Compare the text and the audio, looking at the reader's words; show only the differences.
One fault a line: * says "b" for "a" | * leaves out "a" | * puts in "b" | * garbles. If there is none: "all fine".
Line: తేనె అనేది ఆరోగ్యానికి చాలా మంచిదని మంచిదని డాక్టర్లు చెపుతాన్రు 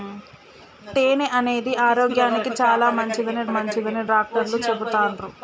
all fine